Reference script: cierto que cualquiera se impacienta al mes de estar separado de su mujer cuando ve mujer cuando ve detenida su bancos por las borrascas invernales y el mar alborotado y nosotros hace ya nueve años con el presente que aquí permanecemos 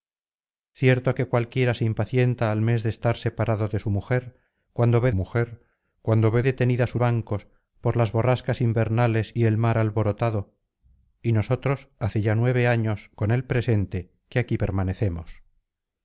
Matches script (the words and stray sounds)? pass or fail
pass